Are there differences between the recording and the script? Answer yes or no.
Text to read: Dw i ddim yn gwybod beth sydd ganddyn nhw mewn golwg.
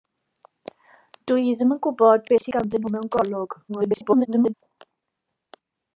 yes